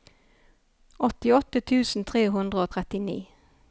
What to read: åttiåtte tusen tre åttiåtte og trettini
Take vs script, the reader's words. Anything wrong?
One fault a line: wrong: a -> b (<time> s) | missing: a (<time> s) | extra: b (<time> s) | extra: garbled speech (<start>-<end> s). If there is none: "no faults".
wrong: åttiåtte -> hundre (2.4 s)